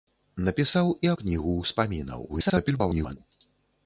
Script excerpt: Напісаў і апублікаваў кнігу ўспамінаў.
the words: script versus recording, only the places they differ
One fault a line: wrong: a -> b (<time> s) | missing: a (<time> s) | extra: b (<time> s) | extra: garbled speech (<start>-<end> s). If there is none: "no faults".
missing: апублікаваў (1.1 s)
extra: garbled speech (2.3-3.2 s)